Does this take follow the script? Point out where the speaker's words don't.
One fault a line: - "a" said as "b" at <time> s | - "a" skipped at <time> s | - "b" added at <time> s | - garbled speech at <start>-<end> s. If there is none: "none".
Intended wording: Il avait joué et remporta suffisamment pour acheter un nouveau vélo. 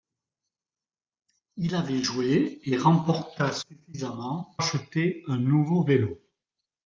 - "pour" skipped at 4.6 s